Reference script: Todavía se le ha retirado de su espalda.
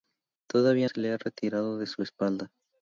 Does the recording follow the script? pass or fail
pass